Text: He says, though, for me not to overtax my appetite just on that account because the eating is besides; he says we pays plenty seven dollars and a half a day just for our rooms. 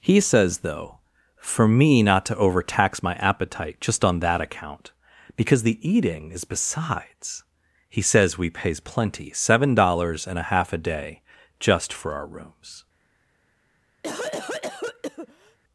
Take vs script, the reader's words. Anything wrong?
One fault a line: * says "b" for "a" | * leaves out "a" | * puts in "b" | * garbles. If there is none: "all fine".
all fine